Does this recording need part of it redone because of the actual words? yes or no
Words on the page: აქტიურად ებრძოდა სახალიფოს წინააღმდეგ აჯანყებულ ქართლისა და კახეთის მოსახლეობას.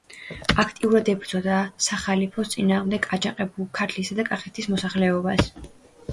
no